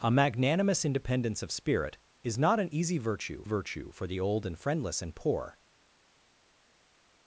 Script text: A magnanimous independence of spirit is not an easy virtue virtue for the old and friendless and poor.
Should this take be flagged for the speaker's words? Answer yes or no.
no